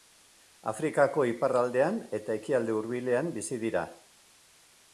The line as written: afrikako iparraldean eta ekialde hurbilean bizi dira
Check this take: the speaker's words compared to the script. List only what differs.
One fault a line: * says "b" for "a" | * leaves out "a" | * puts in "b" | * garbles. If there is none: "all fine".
all fine